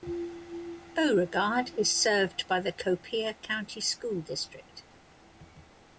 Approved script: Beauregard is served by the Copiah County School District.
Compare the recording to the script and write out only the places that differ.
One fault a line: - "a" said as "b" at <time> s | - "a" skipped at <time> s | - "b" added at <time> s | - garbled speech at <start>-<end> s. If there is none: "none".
none